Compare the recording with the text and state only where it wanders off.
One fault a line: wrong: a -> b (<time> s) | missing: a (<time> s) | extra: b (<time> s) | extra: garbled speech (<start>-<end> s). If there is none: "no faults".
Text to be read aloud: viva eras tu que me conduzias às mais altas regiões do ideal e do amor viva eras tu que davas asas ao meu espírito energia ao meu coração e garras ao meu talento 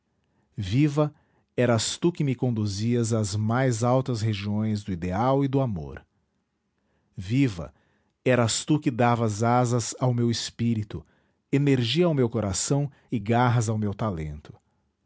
no faults